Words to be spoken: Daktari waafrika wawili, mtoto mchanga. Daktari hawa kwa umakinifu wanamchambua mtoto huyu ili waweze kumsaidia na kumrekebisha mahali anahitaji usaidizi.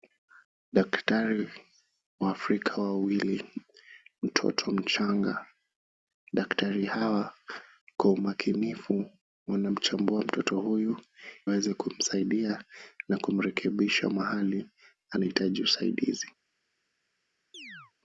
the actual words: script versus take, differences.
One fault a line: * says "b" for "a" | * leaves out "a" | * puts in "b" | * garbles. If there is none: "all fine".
* leaves out "ili"